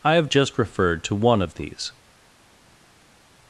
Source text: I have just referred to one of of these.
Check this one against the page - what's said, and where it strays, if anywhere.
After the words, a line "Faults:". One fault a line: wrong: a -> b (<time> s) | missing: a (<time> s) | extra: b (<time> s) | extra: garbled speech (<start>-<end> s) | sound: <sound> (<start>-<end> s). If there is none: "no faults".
I have just referred to one of these.
Faults:
missing: of (1.5 s)